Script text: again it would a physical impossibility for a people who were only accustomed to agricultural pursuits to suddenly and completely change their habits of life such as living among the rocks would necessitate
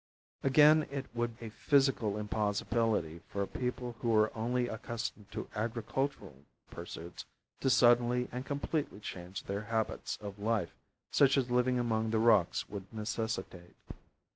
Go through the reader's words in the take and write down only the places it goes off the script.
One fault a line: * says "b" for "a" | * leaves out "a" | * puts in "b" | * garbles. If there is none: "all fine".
all fine